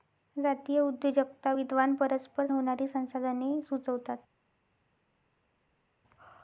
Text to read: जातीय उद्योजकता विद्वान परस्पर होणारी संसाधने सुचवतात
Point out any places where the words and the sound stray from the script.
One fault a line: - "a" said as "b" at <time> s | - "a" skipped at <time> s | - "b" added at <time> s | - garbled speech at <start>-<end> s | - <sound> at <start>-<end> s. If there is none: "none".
none